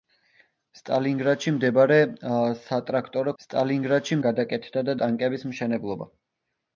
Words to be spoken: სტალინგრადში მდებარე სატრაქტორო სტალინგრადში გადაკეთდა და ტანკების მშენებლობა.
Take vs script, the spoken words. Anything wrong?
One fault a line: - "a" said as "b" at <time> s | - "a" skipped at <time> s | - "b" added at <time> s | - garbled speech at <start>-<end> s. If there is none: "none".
none